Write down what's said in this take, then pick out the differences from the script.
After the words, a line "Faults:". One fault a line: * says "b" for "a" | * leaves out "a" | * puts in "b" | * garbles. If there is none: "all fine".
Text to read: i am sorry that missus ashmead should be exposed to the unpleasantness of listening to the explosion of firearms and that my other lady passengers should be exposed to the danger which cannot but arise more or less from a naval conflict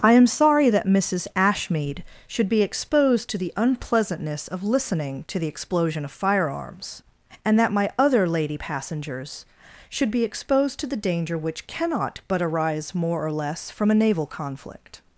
i am sorry that missus ashmead should be exposed to the unpleasantness of listening to the explosion of firearms and that my other lady passengers should be exposed to the danger which cannot but arise more or less from a naval conflict
Faults:
all fine